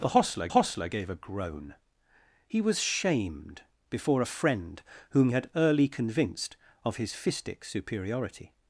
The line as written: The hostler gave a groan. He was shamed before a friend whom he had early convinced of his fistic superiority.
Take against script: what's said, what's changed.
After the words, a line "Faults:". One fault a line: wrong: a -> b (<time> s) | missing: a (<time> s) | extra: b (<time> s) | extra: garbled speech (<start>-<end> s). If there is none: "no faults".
The hostler hostler gave a groan. He was shamed before a friend whom had early convinced of his fistic superiority.
Faults:
extra: hostler (0.5 s)
missing: he (5.3 s)